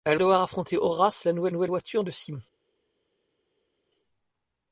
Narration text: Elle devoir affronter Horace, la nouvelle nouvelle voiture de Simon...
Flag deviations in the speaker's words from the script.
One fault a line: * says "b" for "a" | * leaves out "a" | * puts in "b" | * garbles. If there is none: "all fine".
all fine